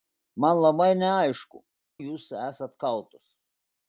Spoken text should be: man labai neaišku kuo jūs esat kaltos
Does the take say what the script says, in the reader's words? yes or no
no